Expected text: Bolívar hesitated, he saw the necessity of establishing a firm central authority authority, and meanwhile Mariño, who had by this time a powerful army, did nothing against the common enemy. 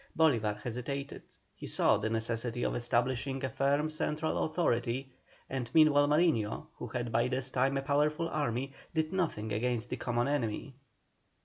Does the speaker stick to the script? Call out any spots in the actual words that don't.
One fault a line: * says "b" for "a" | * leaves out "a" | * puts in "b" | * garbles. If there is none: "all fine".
* leaves out "authority"